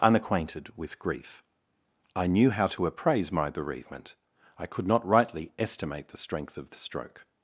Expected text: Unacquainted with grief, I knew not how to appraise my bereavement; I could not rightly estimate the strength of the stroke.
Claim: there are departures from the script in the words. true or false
true